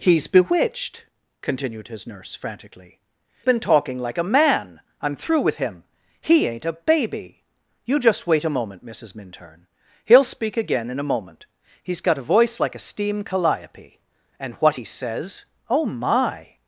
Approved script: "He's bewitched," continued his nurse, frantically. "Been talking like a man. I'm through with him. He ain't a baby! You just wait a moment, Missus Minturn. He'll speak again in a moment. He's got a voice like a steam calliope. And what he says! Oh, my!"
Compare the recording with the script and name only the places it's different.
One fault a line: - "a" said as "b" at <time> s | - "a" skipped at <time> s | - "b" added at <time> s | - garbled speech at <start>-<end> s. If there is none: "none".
none